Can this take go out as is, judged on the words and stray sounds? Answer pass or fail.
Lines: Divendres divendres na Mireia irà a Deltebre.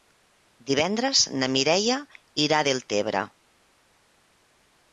fail